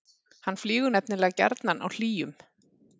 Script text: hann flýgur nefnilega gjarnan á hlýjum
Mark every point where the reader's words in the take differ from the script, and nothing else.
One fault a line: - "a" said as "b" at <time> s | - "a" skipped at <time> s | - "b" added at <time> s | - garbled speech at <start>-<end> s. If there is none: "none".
none